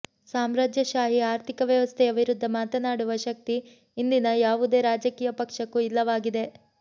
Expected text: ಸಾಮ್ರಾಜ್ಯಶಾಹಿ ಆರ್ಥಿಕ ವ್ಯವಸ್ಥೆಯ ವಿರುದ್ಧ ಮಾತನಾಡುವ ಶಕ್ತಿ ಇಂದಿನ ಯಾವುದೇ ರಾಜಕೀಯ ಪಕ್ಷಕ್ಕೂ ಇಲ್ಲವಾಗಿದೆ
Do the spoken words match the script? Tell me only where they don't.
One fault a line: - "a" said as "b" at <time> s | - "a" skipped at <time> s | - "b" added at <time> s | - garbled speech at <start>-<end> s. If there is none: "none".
none